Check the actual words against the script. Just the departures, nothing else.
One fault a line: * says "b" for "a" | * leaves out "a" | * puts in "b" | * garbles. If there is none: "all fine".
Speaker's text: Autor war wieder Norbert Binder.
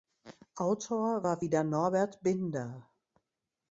all fine